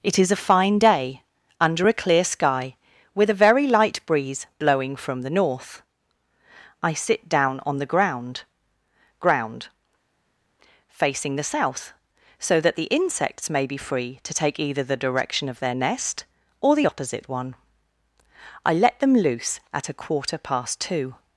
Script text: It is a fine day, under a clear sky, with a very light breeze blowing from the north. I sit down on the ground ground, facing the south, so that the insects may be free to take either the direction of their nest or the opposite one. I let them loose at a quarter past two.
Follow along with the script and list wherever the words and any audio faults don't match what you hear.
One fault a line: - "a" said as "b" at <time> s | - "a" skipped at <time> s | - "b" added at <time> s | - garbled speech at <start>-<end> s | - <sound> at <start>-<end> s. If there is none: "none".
none